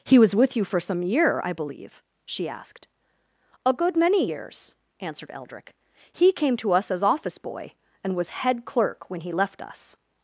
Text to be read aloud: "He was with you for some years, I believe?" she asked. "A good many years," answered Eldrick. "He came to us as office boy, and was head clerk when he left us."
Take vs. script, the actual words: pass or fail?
fail